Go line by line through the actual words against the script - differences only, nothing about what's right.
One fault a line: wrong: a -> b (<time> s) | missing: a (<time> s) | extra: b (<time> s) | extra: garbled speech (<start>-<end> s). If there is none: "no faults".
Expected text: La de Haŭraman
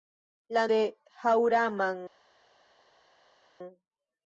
no faults